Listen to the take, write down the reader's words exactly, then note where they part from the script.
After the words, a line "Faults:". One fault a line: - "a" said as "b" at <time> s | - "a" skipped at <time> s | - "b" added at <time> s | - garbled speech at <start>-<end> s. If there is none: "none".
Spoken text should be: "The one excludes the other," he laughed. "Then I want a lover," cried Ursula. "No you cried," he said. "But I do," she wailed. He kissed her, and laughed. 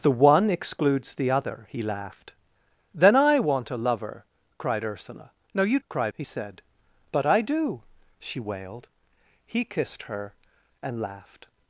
"The one excludes the other," he laughed. "Then I want a lover," cried Ursula. "No you cried," he said. "But I do," she wailed. He kissed her, and laughed.
Faults:
none